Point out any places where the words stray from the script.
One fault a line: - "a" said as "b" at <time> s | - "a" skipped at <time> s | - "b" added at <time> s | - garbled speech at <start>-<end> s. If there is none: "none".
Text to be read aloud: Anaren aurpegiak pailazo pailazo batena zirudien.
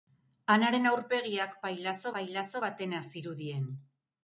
none